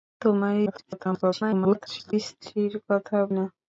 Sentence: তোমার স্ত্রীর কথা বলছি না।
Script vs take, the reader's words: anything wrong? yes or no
yes